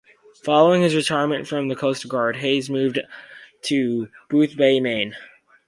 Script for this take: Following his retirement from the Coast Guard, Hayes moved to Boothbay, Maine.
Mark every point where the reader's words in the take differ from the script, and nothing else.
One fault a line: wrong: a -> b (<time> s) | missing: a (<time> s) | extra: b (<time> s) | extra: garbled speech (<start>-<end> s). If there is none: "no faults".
no faults